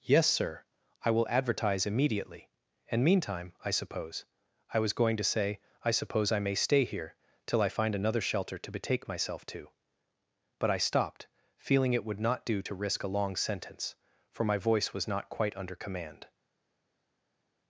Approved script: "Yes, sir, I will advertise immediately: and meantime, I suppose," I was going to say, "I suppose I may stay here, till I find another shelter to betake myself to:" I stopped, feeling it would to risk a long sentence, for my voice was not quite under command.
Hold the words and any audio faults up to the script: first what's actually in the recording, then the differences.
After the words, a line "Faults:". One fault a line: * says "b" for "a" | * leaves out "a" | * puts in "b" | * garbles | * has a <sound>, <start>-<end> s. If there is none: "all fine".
"Yes, sir, I will advertise immediately: and meantime, I suppose," I was going to say, "I suppose I may stay here, till I find another shelter to betake myself to:" but I stopped, feeling it would not do to risk a long sentence, for my voice was not quite under command.
Faults:
* puts in "but"
* puts in "not do"